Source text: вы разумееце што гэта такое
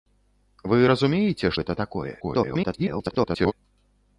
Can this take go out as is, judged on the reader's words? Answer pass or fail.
fail